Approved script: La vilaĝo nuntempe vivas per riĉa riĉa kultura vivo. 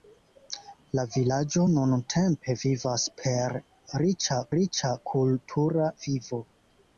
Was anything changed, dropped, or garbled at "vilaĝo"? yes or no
no